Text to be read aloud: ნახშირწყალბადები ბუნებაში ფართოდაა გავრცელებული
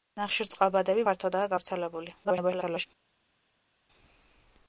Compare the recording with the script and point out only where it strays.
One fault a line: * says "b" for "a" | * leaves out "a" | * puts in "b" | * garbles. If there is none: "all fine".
* leaves out "ბუნებაში"
* garbles